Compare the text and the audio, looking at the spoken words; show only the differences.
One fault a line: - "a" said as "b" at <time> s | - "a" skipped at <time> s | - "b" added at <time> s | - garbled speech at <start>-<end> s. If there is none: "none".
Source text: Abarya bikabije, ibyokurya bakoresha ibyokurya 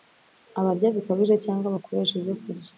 - "ibyokurya" said as "cyangwa" at 1.4 s